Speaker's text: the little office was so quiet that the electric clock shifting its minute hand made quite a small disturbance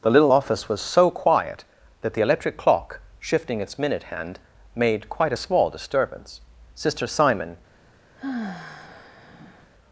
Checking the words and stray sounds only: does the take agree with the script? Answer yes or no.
no